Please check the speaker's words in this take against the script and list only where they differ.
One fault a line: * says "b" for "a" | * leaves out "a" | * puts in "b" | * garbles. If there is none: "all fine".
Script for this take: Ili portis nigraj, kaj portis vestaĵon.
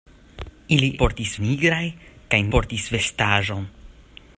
all fine